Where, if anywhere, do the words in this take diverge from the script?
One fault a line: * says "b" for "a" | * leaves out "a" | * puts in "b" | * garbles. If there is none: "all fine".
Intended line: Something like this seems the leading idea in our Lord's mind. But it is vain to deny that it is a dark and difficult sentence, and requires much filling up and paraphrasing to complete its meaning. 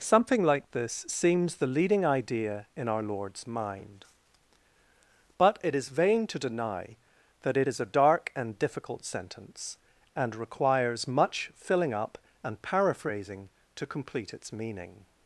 all fine